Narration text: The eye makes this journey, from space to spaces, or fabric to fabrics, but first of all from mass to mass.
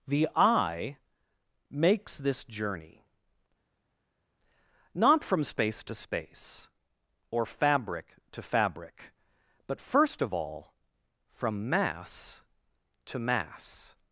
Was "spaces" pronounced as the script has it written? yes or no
no